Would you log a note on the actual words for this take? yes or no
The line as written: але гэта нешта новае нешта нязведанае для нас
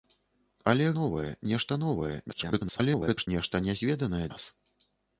yes